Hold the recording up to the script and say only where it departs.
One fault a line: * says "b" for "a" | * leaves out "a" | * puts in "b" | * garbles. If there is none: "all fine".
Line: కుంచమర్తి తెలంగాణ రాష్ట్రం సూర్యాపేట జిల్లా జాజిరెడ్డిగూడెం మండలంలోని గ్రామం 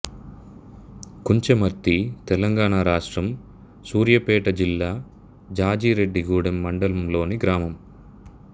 all fine